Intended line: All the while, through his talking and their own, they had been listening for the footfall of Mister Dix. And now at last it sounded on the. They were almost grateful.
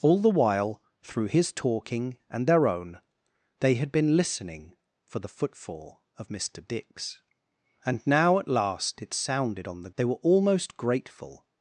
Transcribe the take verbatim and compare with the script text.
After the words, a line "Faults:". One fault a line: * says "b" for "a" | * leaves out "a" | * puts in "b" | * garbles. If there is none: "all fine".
All the while, through his talking and their own, they had been listening for the footfall of Mister Dix. And now at last it sounded on the. They were almost grateful.
Faults:
all fine